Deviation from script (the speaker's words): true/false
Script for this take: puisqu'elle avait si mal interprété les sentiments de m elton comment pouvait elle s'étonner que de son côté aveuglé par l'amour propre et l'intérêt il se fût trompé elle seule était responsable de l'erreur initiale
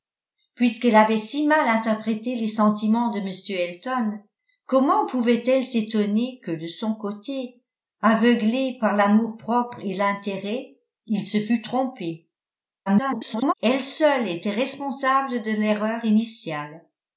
true